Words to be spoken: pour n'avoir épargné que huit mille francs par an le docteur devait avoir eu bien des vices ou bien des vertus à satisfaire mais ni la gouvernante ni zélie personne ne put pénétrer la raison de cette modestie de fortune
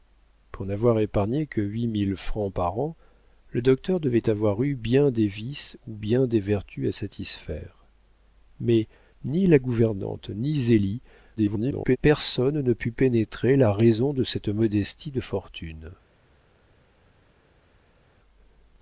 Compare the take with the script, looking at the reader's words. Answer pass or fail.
fail